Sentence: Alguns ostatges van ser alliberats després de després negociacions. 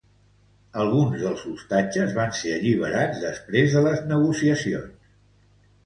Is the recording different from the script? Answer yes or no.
yes